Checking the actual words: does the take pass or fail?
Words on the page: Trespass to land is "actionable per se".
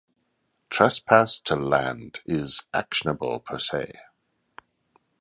pass